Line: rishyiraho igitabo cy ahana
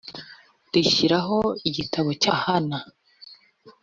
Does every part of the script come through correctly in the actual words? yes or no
yes